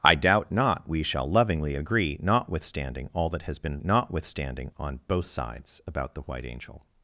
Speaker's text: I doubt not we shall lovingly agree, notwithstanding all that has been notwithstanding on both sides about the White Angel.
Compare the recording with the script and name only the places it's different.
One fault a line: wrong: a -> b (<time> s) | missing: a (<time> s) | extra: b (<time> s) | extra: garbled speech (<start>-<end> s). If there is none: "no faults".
no faults